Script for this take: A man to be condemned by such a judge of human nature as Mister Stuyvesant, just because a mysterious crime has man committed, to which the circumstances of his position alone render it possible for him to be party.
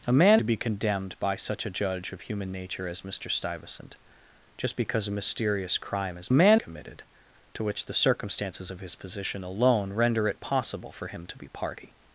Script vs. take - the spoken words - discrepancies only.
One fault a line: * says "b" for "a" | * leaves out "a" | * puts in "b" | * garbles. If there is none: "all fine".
all fine